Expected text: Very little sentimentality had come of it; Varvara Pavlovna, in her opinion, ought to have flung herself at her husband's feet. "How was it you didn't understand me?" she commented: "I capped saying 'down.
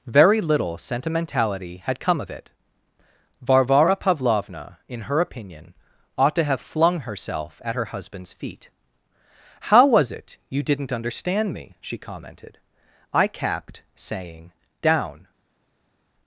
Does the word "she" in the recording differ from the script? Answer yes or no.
no